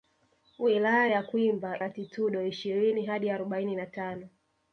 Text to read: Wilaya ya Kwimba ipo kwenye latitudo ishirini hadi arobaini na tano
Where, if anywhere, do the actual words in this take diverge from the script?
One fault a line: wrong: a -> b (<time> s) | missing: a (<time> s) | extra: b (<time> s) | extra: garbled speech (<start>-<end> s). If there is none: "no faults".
missing: ipo kwenye (1.8 s)